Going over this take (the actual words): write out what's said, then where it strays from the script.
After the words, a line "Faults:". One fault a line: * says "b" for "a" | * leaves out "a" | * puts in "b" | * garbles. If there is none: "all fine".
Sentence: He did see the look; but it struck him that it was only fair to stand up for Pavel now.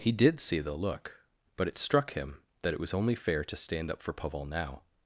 He did see the look; but it struck him that it was only fair to stand up for Pavel now.
Faults:
all fine